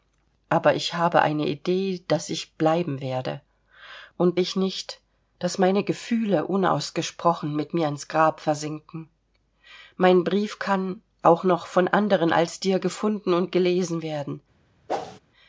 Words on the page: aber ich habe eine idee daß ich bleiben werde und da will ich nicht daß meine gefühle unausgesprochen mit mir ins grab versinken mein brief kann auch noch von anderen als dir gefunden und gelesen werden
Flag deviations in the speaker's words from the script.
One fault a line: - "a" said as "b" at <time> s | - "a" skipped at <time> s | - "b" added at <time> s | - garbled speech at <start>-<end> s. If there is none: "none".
- "da will" skipped at 4.4 s